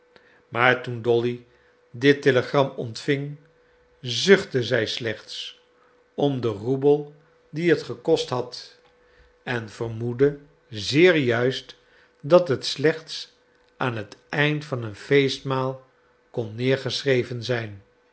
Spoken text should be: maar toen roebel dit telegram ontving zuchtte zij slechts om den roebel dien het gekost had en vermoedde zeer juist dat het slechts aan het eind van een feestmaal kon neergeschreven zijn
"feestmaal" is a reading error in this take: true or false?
false